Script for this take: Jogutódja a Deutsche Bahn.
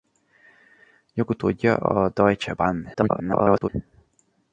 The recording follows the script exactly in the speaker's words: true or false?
false